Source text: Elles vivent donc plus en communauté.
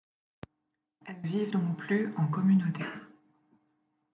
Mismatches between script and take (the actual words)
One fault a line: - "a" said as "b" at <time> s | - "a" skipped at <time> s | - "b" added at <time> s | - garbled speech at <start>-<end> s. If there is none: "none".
none